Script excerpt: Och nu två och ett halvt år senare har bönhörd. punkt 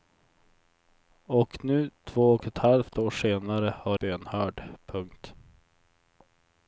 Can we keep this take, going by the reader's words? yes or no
yes